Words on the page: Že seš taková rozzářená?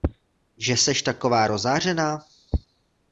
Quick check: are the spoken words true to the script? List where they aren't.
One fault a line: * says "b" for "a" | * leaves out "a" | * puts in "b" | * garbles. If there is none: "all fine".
all fine